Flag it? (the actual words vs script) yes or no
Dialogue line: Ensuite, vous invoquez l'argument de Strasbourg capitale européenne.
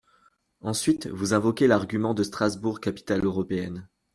no